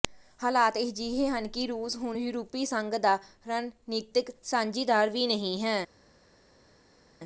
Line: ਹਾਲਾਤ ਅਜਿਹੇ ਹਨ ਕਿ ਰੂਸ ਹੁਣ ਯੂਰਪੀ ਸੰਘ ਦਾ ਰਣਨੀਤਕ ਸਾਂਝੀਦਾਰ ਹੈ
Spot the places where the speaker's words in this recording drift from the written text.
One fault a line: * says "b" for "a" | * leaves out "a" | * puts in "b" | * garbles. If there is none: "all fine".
* puts in "ਵੀ ਨਹੀਂ"